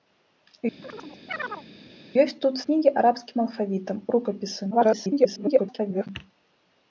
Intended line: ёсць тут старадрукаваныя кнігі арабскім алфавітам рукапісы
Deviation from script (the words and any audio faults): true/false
true